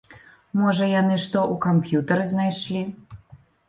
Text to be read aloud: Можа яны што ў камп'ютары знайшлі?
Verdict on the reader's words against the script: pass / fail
pass